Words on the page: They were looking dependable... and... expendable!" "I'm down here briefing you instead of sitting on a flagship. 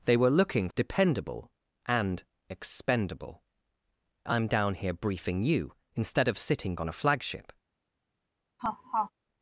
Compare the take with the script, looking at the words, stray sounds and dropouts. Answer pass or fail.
fail